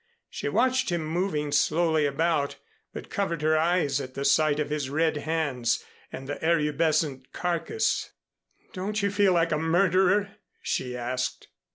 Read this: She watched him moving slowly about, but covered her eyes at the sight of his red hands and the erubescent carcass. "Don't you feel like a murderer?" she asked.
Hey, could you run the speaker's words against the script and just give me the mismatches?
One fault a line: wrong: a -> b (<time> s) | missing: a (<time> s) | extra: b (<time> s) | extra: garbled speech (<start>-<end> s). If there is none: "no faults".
no faults